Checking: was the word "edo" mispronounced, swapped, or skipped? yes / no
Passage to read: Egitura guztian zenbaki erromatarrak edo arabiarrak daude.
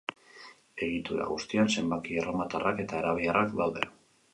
yes